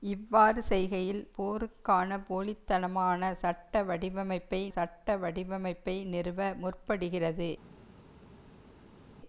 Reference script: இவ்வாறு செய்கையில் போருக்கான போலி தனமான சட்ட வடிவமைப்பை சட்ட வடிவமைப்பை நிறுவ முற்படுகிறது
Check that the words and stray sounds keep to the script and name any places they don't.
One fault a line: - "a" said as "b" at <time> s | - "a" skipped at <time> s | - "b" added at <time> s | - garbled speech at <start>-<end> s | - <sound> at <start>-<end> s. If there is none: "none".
none